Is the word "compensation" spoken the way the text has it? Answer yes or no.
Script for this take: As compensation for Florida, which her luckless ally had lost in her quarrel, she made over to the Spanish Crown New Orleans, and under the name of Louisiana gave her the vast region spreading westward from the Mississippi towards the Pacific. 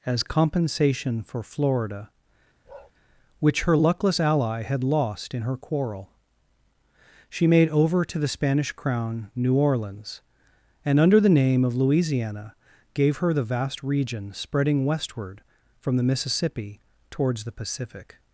yes